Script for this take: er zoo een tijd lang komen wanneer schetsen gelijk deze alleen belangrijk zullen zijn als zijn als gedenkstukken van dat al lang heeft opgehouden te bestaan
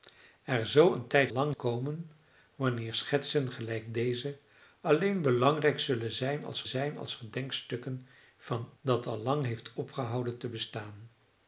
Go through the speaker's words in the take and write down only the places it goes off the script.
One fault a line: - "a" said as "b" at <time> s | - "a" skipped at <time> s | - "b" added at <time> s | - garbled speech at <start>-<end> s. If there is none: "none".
none